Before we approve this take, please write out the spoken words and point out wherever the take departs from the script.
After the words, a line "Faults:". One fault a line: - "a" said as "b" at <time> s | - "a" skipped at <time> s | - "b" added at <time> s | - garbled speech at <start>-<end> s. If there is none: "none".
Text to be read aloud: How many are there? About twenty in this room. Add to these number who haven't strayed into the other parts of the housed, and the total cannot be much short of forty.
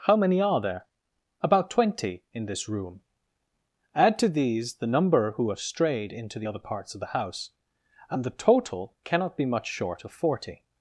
How many are there? About twenty in this room. Add to these the number who have strayed into the other parts of the house, and the total cannot be much short of forty.
Faults:
- "the" added at 4.8 s
- "haven't" said as "have" at 5.5 s
- "housed" said as "house" at 7.2 s